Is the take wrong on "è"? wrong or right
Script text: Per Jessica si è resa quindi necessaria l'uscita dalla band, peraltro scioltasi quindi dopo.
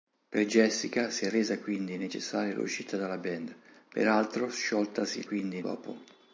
right